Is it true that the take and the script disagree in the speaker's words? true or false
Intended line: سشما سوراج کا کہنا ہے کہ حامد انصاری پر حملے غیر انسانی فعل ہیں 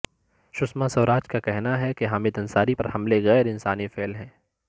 false